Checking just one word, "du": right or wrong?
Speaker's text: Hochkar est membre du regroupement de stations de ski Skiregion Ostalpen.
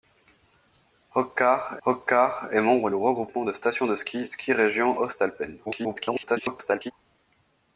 wrong